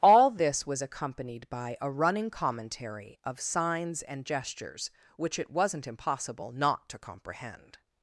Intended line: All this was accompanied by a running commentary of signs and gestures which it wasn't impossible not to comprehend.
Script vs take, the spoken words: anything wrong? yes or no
no